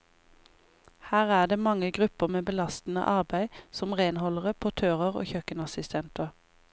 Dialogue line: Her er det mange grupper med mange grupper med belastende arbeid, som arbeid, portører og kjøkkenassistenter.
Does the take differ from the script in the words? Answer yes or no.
yes